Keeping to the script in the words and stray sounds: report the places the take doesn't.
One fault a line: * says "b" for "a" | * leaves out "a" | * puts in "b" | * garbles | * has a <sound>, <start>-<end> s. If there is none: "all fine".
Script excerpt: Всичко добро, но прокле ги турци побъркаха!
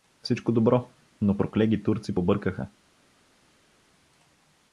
all fine